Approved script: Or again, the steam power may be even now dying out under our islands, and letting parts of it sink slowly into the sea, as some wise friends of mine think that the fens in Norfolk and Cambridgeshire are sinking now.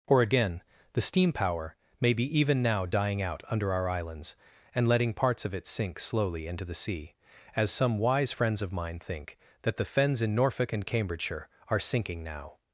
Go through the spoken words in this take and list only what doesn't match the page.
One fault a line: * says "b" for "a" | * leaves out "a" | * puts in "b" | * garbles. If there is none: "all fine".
all fine